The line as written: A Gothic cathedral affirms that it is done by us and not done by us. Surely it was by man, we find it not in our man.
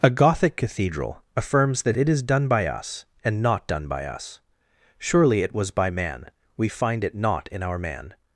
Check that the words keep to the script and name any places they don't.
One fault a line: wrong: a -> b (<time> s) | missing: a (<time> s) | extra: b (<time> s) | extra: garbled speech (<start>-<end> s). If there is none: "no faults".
no faults